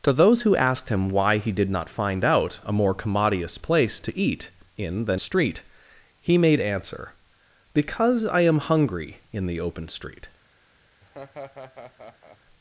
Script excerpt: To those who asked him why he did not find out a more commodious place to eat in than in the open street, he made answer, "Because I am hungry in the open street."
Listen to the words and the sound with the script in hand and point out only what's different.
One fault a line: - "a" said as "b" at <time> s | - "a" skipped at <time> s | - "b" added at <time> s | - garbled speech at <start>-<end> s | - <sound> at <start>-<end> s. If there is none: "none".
- "in the open" skipped at 5.2 s
- laugh at 11.0-12.4 s